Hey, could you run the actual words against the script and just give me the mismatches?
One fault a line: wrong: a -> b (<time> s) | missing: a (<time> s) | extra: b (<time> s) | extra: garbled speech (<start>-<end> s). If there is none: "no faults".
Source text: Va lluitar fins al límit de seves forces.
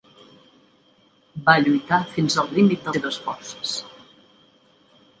no faults